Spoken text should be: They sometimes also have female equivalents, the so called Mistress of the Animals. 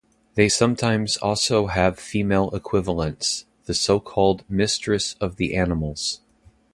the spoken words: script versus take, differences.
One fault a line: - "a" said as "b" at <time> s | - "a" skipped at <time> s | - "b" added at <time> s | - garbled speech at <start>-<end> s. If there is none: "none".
none